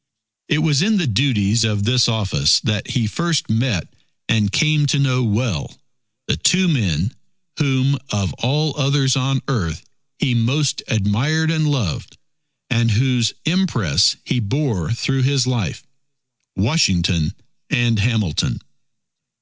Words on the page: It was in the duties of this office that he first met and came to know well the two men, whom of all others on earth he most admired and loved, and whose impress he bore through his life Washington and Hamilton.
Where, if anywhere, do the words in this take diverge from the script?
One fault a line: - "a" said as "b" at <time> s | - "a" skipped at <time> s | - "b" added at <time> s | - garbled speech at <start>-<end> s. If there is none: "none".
none